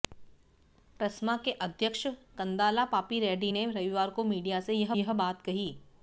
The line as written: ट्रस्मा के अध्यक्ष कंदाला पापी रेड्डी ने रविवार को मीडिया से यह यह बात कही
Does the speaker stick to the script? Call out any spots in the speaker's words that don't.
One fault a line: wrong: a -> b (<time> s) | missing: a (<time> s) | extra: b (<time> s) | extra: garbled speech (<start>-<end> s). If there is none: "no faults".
no faults